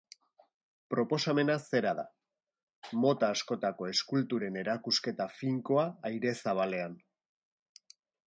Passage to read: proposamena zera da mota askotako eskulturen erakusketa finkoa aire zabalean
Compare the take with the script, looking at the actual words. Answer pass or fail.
pass